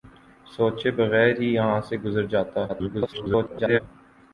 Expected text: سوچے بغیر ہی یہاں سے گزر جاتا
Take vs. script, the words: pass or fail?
fail